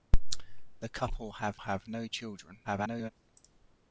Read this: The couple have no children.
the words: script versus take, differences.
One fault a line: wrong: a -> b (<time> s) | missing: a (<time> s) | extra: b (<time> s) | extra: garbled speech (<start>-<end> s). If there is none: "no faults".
extra: have (1.6 s)
extra: garbled speech (2.6-3.1 s)